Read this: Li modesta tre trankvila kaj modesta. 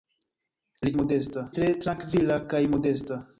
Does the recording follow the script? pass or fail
pass